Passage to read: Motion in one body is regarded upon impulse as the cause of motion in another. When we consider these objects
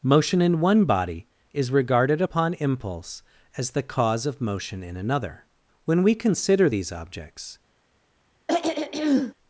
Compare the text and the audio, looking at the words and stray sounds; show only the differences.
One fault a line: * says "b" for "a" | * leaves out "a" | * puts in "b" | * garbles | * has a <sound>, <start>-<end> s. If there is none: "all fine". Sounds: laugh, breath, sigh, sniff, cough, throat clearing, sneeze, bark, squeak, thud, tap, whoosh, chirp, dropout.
* has a throat clearing, 8.5-9.3 s